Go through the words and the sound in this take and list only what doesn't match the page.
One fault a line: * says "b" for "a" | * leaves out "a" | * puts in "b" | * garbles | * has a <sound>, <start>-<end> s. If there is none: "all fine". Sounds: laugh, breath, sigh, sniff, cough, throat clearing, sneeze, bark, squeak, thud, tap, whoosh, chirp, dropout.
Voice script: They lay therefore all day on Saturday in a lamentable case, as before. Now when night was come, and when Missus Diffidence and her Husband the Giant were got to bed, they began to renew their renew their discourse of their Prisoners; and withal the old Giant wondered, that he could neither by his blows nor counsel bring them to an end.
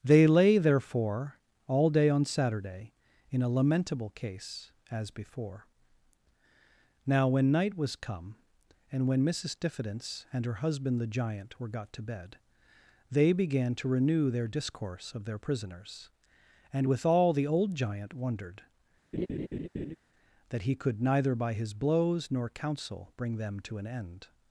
* leaves out "renew their"
* has a laugh, 19.1-20.0 s